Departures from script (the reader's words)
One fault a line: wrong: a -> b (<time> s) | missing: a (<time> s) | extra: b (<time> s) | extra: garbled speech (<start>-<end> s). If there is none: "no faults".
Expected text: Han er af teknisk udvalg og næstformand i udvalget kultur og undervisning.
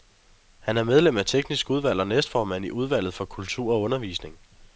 extra: medlem (0.8 s)
extra: for (3.1 s)